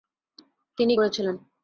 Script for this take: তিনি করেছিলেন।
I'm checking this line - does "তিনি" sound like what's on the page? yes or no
yes